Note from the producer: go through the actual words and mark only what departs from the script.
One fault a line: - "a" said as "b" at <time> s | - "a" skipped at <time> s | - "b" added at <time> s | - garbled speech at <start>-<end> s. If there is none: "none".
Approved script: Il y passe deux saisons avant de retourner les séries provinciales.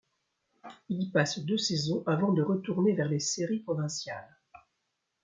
- "vers" added at 2.9 s